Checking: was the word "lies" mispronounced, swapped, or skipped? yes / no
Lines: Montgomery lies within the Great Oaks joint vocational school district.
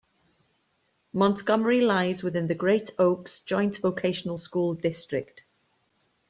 no